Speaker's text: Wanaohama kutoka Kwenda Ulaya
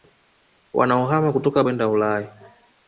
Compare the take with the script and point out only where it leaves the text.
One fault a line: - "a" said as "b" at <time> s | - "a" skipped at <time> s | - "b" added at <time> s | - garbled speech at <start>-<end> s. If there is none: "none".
none